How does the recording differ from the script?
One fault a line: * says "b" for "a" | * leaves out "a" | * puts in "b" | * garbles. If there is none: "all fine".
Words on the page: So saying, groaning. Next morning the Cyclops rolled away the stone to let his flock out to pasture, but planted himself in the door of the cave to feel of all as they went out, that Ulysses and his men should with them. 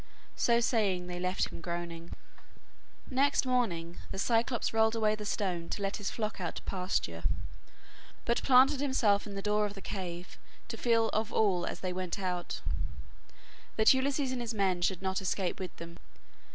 * puts in "they left him"
* puts in "not escape"